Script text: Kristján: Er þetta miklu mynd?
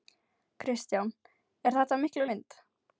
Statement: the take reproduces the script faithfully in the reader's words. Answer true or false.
true